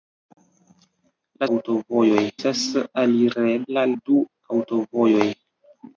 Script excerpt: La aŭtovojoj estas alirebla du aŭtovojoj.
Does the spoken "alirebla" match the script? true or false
true